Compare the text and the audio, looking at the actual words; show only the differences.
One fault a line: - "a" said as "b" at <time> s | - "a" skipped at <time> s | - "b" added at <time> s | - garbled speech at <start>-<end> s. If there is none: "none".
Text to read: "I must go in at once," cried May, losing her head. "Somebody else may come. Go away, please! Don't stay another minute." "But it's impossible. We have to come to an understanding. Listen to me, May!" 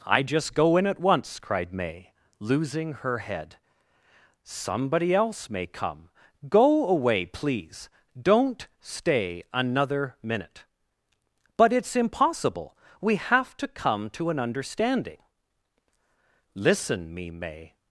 - "must" said as "just" at 0.2 s
- "to" skipped at 17.1 s